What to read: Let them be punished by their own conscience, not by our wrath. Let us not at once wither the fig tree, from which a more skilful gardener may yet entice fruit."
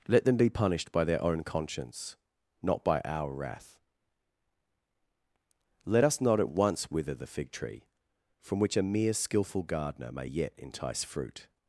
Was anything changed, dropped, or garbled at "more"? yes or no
yes